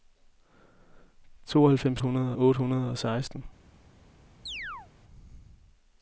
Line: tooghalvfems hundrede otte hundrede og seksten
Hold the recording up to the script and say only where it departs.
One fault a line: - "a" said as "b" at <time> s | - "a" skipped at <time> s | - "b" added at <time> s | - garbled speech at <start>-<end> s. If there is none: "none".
none